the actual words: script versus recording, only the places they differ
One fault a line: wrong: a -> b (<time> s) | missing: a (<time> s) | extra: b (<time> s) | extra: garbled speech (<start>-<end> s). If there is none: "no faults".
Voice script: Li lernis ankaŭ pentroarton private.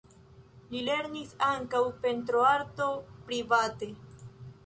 no faults